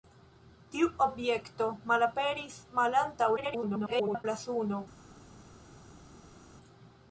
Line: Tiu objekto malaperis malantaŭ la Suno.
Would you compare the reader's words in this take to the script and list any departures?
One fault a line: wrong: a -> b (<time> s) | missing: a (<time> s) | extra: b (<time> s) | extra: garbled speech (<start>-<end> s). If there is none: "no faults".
extra: garbled speech (3.4-4.3 s)